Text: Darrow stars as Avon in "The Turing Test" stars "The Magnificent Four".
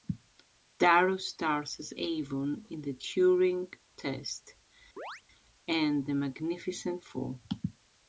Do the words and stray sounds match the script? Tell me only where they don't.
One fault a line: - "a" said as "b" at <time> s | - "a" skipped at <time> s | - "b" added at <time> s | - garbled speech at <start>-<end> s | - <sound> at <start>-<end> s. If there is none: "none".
- chirp at 5.0-5.2 s
- "stars" said as "and" at 5.7 s